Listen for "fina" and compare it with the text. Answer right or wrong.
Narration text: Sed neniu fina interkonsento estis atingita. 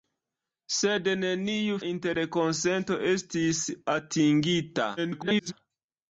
wrong